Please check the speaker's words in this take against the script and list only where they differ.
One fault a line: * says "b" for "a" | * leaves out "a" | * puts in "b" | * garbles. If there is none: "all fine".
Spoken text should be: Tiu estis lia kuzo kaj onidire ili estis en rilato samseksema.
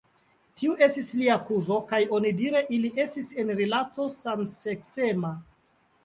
all fine